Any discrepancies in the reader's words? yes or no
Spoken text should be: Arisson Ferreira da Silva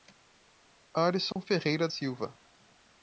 yes